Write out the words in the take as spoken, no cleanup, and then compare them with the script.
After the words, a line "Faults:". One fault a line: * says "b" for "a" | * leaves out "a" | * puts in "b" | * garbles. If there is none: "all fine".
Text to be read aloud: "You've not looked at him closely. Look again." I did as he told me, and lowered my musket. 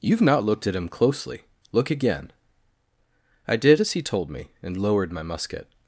"You've not looked at him closely. Look again." I did as he told me, and lowered my musket.
Faults:
all fine